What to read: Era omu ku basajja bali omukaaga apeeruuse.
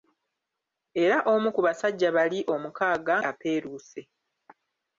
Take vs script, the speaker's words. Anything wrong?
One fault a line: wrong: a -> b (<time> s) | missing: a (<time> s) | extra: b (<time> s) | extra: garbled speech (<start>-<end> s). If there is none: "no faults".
no faults